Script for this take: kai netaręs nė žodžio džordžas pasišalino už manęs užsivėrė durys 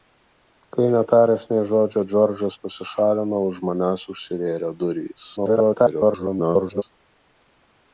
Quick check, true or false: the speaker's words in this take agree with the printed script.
false